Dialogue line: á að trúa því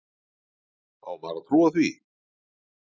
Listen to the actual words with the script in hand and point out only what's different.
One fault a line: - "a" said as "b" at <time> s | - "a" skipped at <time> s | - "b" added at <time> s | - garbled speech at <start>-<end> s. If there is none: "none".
- "maður" added at 1.2 s